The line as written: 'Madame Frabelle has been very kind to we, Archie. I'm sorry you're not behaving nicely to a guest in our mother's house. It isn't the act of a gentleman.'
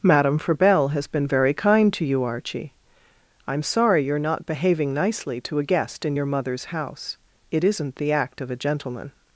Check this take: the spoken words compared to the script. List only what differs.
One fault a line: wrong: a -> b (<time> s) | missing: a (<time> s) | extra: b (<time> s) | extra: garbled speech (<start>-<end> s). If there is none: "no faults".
wrong: we -> you (2.0 s)
wrong: our -> your (6.1 s)